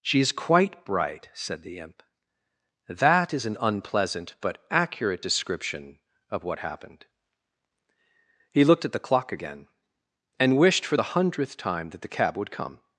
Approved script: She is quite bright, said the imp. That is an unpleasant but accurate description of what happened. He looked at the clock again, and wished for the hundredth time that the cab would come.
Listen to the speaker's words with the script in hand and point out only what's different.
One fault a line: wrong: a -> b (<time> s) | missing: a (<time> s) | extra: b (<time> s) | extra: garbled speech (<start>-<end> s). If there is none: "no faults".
no faults